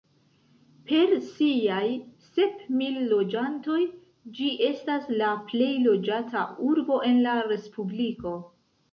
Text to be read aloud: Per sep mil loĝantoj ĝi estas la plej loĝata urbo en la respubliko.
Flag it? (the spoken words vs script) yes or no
yes